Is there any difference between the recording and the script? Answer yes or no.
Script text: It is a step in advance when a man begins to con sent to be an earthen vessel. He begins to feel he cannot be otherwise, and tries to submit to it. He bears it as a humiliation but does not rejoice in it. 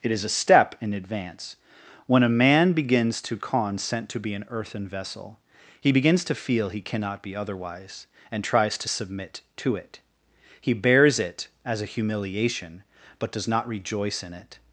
no